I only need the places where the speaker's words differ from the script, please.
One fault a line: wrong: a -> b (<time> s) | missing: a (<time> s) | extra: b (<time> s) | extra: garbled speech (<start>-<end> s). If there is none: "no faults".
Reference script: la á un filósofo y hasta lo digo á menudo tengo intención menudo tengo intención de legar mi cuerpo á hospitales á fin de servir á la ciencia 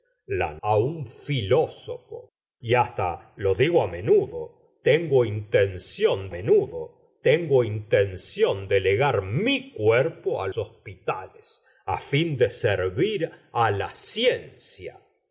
no faults